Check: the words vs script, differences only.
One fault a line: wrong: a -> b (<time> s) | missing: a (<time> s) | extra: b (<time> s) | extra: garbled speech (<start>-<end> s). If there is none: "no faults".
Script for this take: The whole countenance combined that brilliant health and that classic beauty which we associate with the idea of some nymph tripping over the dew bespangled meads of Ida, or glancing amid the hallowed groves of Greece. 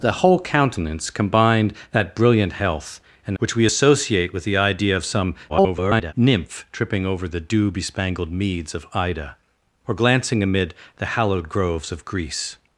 missing: that classic beauty (3.4 s)
extra: garbled speech (5.5-6.1 s)